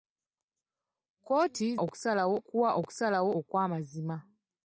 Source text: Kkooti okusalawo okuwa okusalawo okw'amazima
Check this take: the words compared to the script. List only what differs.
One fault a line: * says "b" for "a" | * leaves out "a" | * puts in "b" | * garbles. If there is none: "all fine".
all fine